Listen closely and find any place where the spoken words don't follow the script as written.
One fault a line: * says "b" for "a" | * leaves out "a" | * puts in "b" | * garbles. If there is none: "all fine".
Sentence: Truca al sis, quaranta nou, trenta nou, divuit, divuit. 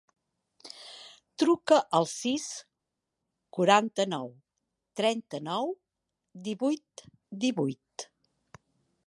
all fine